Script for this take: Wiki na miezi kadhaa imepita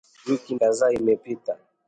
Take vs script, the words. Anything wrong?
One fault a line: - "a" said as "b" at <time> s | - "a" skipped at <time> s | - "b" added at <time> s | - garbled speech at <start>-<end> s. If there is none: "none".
- "na miezi" skipped at 0.6 s